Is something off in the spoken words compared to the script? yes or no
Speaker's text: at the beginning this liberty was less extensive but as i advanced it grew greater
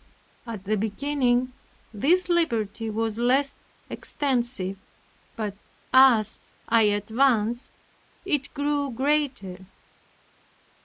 no